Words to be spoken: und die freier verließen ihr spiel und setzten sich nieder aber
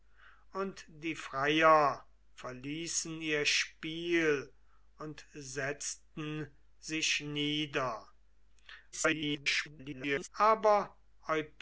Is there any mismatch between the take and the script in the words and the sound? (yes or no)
yes